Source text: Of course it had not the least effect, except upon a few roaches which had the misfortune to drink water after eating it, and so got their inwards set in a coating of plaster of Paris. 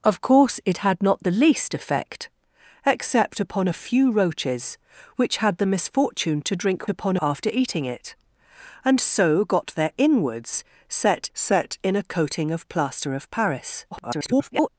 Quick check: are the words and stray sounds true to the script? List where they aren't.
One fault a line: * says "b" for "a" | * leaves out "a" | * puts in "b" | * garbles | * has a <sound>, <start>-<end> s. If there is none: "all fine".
* says "upon" for "water"
* puts in "set"
* garbles